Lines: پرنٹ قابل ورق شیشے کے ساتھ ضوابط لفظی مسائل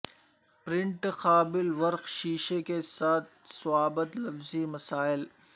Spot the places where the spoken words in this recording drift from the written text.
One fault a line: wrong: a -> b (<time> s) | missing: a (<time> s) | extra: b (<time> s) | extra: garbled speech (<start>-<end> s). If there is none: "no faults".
no faults